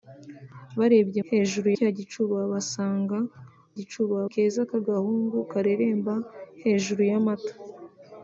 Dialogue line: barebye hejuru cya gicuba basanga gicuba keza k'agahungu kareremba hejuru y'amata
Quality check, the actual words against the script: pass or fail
pass